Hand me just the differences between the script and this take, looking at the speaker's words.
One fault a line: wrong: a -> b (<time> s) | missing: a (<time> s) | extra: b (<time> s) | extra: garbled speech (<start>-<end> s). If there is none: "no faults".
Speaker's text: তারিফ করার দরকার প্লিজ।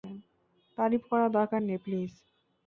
extra: নেই (1.6 s)